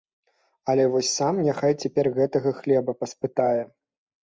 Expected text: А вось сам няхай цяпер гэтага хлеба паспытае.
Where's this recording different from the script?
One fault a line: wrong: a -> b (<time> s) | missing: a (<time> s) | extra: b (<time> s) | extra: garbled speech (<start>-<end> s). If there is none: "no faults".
wrong: А -> Але (0.7 s)